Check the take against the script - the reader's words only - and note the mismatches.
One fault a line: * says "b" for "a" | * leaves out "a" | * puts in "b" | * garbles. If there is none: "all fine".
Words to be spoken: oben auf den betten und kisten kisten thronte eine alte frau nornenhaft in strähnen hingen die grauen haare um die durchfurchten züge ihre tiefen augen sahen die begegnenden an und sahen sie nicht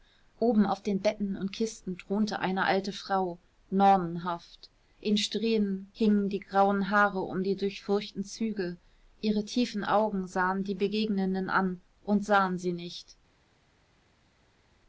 * leaves out "kisten"